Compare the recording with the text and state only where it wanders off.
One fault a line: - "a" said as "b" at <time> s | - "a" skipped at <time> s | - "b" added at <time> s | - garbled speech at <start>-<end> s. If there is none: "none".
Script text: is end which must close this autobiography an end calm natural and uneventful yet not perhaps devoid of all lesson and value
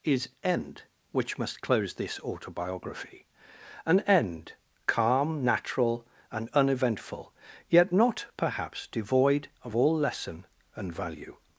none